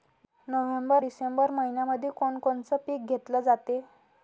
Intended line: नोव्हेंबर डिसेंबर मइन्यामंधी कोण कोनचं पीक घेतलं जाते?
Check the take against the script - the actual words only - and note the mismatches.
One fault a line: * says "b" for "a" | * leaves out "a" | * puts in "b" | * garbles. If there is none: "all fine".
all fine